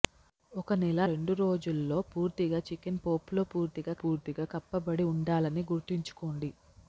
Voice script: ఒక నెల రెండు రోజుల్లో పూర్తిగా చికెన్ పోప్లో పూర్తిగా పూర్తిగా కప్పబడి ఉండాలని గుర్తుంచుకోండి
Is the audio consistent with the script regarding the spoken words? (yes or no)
yes